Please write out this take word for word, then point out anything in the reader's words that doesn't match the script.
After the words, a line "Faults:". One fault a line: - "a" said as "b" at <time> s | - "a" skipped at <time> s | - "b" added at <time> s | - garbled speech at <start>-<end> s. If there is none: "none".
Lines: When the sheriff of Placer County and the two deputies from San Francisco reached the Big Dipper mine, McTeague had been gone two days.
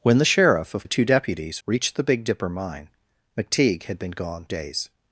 When the sheriff of The two deputies reached the Big Dipper mine, McTeague had been gone days.
Faults:
- "Placer County and" skipped at 0.9 s
- "from San Francisco" skipped at 1.6 s
- "two" skipped at 4.5 s